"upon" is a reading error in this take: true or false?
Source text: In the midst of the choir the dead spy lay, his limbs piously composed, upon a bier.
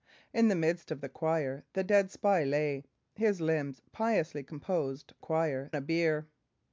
true